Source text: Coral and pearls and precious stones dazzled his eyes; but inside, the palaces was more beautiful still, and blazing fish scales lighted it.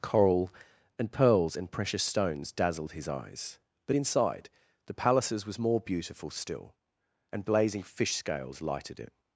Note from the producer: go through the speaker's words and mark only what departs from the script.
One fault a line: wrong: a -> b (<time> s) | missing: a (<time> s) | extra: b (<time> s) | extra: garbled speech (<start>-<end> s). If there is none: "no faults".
no faults